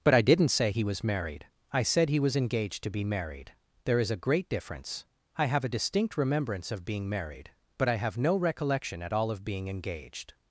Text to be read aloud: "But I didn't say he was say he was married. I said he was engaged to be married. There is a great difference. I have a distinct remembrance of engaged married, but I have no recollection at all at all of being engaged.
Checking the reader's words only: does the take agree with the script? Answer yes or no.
no